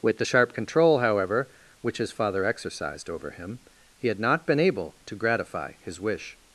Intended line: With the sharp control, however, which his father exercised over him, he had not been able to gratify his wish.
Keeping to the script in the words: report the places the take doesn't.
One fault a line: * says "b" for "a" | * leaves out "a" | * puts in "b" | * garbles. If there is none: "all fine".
all fine